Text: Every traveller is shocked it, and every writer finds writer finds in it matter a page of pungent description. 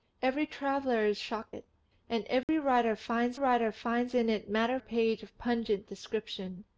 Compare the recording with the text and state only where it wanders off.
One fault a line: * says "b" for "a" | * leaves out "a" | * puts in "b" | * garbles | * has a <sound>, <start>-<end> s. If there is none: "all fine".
* has a dropout, 2.4-2.5 s